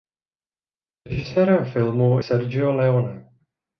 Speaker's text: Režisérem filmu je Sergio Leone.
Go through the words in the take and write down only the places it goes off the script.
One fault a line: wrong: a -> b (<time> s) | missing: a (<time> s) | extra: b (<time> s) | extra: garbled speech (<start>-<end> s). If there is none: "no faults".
missing: je (2.2 s)